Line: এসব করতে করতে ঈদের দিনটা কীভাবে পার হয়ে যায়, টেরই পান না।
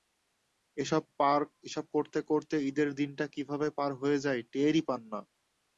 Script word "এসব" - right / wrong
right